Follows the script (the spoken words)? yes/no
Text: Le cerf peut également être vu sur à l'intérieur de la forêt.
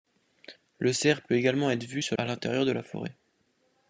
yes